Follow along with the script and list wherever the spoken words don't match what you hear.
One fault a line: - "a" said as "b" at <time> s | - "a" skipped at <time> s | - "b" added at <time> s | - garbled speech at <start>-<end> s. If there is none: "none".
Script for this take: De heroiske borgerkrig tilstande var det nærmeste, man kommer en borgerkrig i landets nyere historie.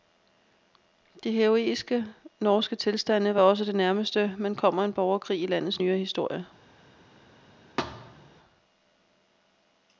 - "borgerkrig" said as "norske" at 2.4 s
- "også" added at 3.4 s